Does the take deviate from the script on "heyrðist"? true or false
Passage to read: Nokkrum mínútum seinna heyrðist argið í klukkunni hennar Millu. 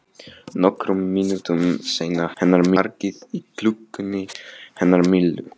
true